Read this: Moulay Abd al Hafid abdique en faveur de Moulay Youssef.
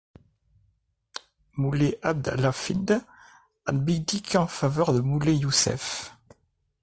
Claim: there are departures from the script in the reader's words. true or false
false